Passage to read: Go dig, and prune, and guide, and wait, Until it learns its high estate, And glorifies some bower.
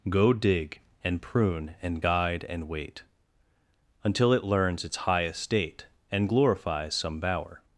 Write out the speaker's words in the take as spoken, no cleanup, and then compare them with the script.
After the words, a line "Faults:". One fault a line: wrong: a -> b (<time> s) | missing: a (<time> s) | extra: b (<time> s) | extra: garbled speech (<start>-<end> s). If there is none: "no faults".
Go dig, and prune, and guide, and wait, Until it learns its high estate, And glorifies some bower.
Faults:
no faults